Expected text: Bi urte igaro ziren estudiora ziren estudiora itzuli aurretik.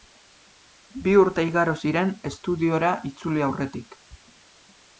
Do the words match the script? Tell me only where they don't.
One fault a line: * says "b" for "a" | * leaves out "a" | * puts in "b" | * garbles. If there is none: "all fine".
* leaves out "ziren estudiora"